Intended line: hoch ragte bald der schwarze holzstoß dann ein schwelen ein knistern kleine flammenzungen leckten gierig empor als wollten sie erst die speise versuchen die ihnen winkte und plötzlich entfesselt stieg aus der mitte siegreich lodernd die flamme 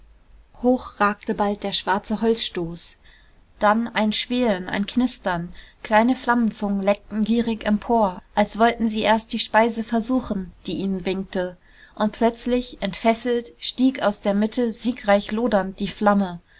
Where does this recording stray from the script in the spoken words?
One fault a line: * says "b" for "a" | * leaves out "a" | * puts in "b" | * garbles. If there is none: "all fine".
all fine